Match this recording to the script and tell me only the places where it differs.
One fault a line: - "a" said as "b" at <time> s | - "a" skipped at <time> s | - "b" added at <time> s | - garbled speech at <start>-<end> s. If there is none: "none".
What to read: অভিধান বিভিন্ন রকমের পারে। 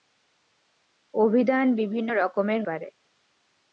none